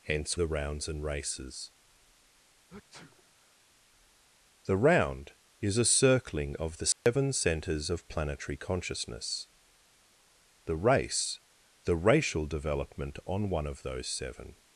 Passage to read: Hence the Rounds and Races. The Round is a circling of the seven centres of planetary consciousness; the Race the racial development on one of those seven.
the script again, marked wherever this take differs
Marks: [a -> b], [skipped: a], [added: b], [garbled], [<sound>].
Hence the Rounds and Races. [sneeze] The Round is a circling of the seven [dropout] centres of planetary consciousness; the Race the racial development on one of those seven.